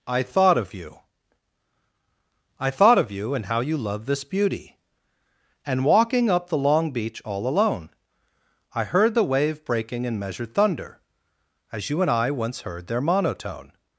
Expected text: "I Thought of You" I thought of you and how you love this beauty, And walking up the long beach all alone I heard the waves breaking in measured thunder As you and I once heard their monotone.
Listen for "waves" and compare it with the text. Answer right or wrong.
wrong